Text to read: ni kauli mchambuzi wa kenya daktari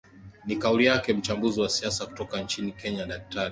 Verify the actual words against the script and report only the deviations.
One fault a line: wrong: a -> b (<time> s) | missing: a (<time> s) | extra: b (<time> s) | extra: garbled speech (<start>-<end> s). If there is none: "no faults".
extra: yake (0.8 s)
extra: siasa kutoka nchini (1.7 s)